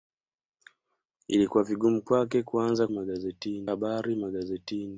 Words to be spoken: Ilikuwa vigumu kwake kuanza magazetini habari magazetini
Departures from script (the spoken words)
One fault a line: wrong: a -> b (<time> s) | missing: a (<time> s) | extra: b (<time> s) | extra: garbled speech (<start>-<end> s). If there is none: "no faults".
no faults